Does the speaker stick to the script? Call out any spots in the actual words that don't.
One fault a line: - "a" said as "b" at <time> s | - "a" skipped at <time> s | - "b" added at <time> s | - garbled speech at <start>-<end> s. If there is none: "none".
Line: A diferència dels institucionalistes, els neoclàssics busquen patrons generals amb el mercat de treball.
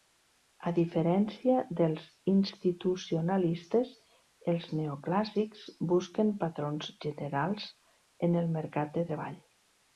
- "amb" said as "en" at 8.3 s